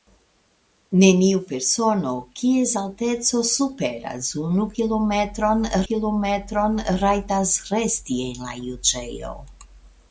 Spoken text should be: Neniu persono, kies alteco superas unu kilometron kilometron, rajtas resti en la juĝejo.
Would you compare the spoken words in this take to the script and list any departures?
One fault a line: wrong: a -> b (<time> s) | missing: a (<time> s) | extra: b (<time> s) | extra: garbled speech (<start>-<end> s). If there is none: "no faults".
no faults